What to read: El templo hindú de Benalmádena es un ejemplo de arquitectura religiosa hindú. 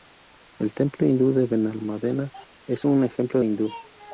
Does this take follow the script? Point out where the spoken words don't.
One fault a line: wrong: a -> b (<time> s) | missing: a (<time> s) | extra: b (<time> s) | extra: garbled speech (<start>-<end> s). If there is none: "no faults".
missing: de arquitectura religiosa (3.4 s)